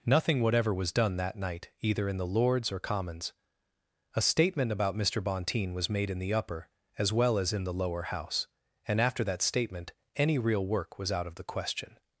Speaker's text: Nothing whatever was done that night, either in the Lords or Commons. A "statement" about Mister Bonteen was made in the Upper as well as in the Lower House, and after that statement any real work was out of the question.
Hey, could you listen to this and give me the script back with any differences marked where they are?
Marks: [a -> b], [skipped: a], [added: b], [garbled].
Nothing whatever was done that night, either in the Lords or Commons. A "statement" about Mister Bonteen was made in the Upper as well as in the Lower House, and after that statement any real work was out of the question.